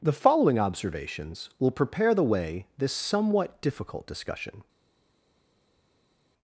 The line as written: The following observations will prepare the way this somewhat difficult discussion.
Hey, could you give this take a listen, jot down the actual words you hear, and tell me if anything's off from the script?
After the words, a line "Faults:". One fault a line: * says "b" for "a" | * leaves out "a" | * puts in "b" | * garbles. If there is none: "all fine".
The following observations will prepare the way this somewhat difficult discussion.
Faults:
all fine